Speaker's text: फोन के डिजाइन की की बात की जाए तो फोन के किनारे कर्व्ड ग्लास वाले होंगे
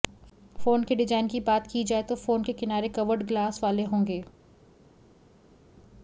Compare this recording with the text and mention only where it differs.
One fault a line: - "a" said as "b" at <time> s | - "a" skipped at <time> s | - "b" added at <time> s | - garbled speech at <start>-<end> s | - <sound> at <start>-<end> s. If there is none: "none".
- "की" skipped at 1.4 s